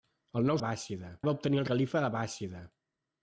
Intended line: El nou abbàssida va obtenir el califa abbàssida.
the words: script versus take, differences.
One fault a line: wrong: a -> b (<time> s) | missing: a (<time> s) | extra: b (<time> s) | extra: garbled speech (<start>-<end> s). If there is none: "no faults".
no faults